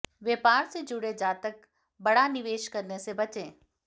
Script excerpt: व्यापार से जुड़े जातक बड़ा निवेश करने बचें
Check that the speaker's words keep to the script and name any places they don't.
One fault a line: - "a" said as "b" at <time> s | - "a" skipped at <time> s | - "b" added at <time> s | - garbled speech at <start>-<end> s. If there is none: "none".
- "से" added at 3.0 s